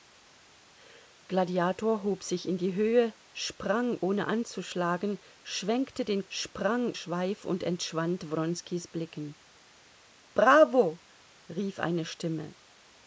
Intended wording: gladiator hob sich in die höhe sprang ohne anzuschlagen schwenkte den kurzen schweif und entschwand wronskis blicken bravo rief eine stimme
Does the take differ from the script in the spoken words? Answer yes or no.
yes